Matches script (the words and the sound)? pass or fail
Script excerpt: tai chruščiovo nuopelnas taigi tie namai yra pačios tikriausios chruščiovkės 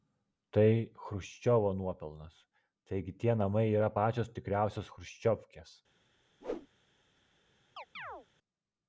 fail